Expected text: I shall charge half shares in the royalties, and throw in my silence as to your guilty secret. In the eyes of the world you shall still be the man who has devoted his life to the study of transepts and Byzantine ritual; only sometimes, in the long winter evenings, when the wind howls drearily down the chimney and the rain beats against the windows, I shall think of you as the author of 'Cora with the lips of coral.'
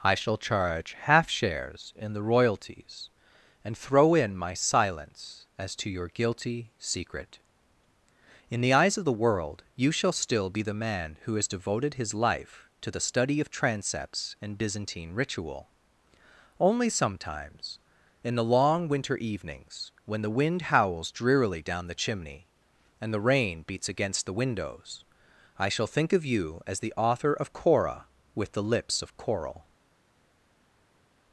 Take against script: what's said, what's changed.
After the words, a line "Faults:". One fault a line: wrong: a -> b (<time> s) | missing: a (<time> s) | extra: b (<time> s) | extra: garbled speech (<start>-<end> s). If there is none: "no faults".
I shall charge half shares in the royalties, and throw in my silence as to your guilty secret. In the eyes of the world you shall still be the man who has devoted his life to the study of transepts and Byzantine ritual; only sometimes, in the long winter evenings, when the wind howls drearily down the chimney and the rain beats against the windows, I shall think of you as the author of 'Cora with the lips of coral.'
Faults:
no faults